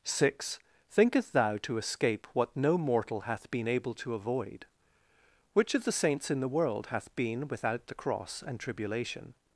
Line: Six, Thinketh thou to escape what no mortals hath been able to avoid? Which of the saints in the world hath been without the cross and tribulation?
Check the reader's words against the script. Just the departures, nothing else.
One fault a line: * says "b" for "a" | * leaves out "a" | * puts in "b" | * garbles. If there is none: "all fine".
* says "mortal" for "mortals"